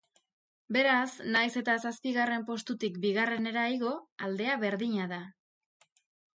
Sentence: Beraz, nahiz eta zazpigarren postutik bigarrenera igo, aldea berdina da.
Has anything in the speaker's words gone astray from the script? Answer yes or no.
no